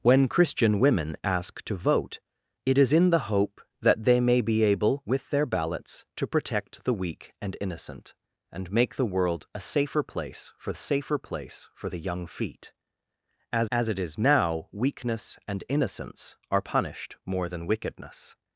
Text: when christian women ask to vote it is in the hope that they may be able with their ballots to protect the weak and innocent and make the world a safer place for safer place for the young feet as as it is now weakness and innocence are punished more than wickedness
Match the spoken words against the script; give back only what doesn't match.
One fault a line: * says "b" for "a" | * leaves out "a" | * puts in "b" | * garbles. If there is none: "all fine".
all fine